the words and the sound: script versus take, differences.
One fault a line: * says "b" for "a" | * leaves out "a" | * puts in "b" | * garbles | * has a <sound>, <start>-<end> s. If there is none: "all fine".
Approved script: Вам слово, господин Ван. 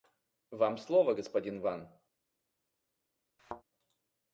* has a thud, 3.4-3.6 s